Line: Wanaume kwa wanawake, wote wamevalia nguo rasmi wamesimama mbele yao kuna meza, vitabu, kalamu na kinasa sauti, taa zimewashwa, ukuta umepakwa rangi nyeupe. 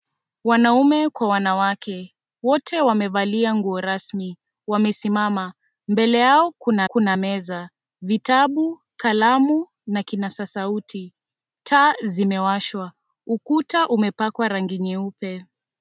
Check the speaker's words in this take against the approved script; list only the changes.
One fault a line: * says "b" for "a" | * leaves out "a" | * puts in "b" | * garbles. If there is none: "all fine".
* puts in "kuna"